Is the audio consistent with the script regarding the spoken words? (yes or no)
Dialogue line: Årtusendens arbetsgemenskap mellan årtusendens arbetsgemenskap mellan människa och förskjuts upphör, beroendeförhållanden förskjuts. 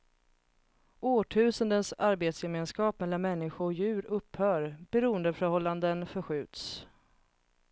no